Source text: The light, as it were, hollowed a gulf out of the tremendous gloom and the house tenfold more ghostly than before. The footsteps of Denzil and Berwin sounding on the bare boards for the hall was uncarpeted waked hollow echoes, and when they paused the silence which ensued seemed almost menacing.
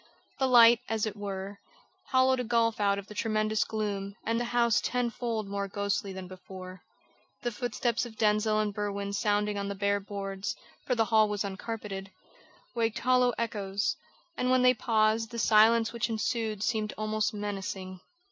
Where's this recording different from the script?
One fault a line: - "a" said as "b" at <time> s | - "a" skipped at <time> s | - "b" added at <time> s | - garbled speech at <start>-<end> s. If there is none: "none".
none